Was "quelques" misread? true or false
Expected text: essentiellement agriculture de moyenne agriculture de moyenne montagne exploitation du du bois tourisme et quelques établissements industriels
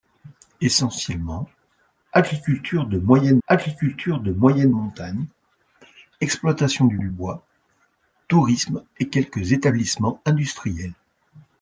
false